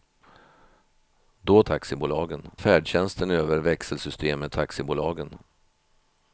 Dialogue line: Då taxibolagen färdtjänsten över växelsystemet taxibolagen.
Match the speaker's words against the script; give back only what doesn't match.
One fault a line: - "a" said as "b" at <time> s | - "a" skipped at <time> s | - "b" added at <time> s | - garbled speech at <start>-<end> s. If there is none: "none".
none